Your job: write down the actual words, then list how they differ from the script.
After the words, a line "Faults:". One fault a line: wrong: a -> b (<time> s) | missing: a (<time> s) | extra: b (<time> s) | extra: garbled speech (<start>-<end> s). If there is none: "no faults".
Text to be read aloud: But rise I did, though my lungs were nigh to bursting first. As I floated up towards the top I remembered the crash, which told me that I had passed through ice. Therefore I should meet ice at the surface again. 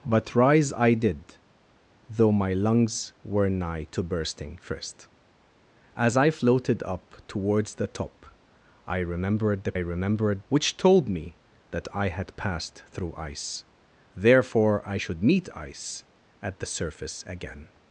But rise I did, though my lungs were nigh to bursting first. As I floated up towards the top I remembered the remembered, which told me that I had passed through ice. Therefore I should meet ice at the surface again.
Faults:
wrong: crash -> remembered (9.8 s)